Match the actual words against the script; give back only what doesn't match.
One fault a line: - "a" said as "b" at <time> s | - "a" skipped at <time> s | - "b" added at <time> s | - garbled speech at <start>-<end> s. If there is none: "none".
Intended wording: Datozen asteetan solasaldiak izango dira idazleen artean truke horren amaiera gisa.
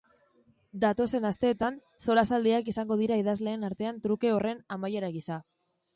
none